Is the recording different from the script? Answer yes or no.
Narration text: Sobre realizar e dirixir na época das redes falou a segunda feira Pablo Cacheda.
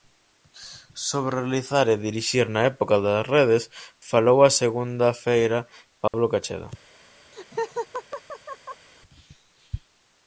no